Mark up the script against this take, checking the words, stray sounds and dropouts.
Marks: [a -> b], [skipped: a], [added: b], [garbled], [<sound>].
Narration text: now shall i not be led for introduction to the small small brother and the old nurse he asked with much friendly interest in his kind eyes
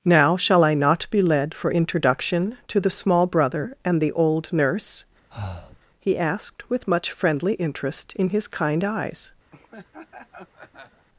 now shall i not be led for introduction to the small [skipped: small] brother and the old nurse [breath] he asked with much friendly interest in his kind eyes [laugh]